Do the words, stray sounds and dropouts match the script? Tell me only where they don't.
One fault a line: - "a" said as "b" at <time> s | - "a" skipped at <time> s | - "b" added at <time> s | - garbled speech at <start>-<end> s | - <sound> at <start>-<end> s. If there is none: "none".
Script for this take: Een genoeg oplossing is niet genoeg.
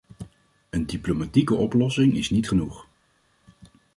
- "genoeg" said as "diplomatieke" at 0.8 s